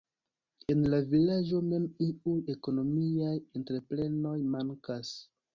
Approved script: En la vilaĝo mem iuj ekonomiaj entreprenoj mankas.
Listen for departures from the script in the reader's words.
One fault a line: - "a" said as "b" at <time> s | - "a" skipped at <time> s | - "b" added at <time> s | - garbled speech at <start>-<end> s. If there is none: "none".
none